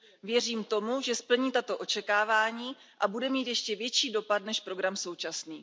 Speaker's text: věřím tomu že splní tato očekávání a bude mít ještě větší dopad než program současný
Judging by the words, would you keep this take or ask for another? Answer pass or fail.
pass